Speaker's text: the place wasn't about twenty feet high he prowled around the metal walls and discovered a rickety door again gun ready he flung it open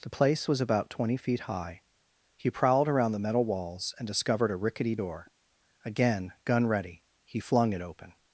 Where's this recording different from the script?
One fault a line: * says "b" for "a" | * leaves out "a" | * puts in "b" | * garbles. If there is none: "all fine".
* says "was" for "wasn't"